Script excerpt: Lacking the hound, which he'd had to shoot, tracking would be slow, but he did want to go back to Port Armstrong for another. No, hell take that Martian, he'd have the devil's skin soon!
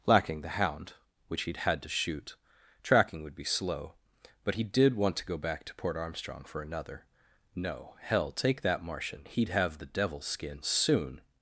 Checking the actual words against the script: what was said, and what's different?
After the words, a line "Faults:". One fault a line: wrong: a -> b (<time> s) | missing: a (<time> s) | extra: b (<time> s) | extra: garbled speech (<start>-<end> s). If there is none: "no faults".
Lacking the hound, which he'd had to shoot, tracking would be slow, but he did want to go back to Port Armstrong for another. No, hell take that Martian, he'd have the devil's skin soon!
Faults:
no faults